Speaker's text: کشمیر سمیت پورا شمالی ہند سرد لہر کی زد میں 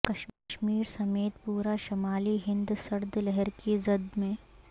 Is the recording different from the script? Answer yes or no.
no